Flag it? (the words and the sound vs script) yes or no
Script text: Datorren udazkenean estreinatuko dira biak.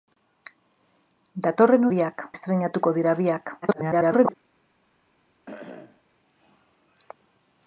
yes